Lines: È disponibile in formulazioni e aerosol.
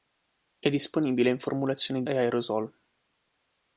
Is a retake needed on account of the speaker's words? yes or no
no